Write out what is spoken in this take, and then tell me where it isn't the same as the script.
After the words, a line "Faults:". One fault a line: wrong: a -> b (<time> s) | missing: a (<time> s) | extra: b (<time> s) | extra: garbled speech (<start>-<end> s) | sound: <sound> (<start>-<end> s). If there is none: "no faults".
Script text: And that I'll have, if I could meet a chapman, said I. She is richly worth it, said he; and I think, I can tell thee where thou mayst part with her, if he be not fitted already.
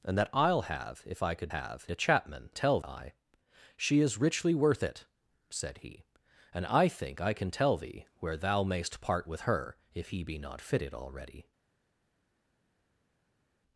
And that I'll have, if I could have a chapman, tell I. She is richly worth it, said he; and I think, I can tell thee where thou mayst part with her, if he be not fitted already.
Faults:
wrong: meet -> have (1.5 s)
wrong: said -> tell (2.5 s)